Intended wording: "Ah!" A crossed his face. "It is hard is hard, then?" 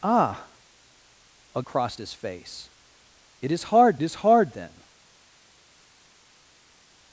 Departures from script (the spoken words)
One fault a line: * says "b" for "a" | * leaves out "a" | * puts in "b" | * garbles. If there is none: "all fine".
all fine